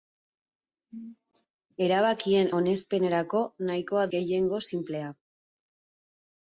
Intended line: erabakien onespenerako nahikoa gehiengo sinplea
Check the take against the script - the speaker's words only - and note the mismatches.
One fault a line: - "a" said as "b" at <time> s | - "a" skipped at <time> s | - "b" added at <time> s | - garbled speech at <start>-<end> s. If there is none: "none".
none